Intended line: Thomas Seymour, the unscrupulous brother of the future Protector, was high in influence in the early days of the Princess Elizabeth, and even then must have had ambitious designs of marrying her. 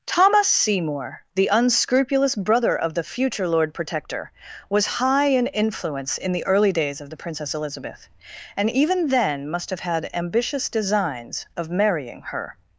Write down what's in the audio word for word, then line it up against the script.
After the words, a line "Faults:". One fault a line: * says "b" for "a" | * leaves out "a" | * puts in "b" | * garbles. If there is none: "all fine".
Thomas Seymour, the unscrupulous brother of the future Lord Protector, was high in influence in the early days of the Princess Elizabeth, and even then must have had ambitious designs of marrying her.
Faults:
* puts in "Lord"